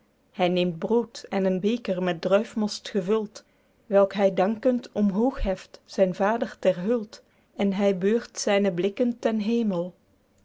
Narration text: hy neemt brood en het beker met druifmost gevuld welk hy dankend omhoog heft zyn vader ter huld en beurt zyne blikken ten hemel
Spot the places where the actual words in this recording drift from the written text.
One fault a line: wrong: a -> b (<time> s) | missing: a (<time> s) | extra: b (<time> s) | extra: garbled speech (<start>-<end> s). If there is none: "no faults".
wrong: het -> een (1.4 s)
extra: hy (7.8 s)